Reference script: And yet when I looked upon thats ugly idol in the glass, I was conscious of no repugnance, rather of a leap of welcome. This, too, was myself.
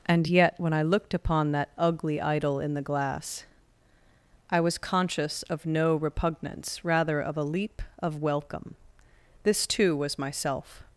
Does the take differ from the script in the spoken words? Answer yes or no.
yes